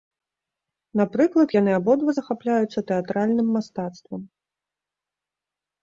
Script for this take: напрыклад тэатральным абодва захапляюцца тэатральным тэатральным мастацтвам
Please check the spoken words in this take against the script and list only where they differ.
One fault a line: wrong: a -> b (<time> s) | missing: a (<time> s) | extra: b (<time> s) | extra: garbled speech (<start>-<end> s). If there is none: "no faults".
wrong: тэатральным -> яны (1.6 s)
missing: тэатральным (3.5 s)